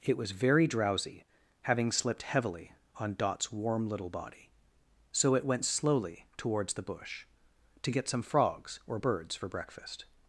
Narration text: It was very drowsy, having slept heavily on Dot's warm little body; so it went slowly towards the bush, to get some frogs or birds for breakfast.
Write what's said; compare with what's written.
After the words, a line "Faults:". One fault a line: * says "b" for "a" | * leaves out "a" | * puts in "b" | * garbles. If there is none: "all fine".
It was very drowsy, having slipped heavily on Dot's warm little body; so it went slowly towards the bush, to get some frogs or birds for breakfast.
Faults:
* says "slipped" for "slept"